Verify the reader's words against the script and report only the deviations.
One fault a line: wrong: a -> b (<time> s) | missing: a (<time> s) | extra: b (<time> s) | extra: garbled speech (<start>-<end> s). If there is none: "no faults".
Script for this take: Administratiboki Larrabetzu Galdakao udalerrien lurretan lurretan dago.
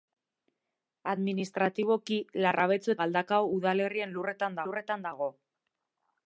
no faults